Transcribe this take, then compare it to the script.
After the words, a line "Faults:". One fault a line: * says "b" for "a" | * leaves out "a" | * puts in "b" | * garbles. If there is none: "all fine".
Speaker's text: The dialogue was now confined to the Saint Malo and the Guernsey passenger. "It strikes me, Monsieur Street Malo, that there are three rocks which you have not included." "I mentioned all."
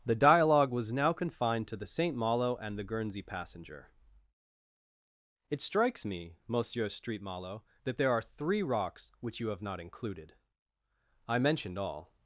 The dialogue was now confined to the Saint Malo and the Guernsey passenger. "It strikes me, Monsieur Street Malo, that there are three rocks which you have not included." "I mentioned all."
Faults:
all fine